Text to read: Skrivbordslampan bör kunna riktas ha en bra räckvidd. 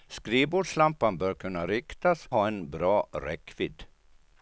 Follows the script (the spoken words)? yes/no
yes